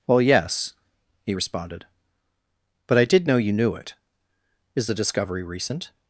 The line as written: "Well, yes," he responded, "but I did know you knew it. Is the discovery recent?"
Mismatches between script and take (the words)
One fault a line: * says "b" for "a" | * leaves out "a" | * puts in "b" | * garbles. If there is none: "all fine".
all fine